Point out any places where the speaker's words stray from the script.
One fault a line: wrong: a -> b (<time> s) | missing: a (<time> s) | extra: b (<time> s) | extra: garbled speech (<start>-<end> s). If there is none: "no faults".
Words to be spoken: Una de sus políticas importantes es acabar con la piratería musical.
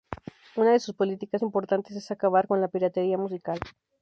no faults